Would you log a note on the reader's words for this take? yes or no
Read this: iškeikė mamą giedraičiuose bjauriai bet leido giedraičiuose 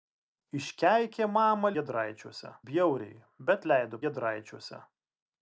no